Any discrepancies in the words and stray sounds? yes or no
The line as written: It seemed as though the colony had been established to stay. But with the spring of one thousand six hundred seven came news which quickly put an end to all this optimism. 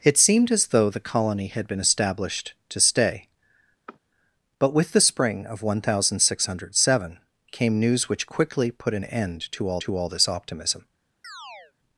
yes